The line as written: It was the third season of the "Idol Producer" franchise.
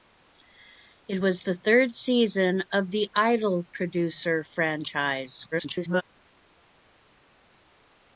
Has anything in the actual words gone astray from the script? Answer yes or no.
yes